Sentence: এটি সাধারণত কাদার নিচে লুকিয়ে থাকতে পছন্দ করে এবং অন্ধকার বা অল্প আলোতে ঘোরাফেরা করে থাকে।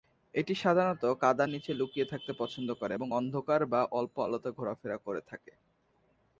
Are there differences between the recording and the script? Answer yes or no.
no